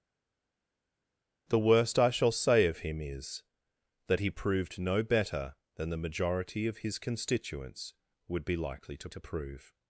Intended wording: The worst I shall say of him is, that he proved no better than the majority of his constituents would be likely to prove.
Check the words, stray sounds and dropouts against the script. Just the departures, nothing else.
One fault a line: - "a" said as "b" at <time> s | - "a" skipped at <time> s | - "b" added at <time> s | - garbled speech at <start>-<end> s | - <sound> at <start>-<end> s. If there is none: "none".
- "to" added at 9.1 s